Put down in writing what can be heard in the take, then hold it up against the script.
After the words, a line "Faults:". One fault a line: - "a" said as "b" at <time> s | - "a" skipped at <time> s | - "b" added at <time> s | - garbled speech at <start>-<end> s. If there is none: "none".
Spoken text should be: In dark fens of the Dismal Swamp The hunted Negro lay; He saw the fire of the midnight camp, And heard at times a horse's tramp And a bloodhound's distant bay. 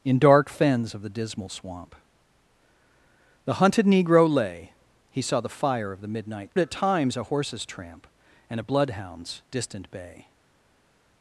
In dark fens of the Dismal Swamp The hunted Negro lay; He saw the fire of the midnight at times a horse's tramp And a bloodhound's distant bay.
Faults:
- "camp And heard" skipped at 6.5 s